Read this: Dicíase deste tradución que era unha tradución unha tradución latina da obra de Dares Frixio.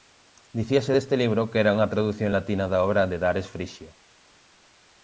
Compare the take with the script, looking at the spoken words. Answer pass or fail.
fail